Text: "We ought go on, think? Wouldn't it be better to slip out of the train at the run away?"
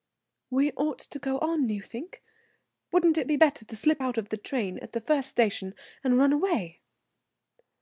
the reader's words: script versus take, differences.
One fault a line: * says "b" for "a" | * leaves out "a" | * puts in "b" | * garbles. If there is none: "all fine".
* puts in "to"
* puts in "you"
* puts in "first station and"